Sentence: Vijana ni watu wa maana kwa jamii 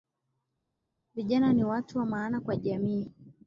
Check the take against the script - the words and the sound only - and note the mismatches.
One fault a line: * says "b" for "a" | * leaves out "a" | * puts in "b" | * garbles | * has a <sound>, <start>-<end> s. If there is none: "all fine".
all fine